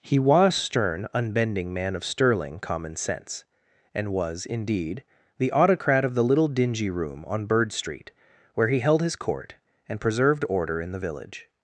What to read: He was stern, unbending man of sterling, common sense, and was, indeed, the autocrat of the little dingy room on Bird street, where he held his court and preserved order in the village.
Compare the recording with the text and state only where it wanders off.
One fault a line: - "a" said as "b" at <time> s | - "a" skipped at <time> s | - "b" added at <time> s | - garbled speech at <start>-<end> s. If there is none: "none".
none